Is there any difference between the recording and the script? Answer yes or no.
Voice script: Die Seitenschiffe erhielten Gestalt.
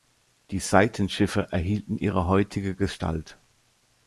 yes